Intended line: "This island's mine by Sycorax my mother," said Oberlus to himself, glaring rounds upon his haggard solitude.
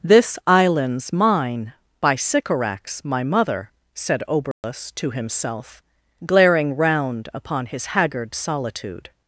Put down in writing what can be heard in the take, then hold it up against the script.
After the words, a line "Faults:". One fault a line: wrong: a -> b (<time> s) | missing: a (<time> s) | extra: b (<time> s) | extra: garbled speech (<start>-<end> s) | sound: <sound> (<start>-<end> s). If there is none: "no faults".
"This island's mine by Sycorax my mother," said Oberlus to himself, glaring round upon his haggard solitude.
Faults:
sound: dropout (4.5-4.6 s)
wrong: rounds -> round (6.8 s)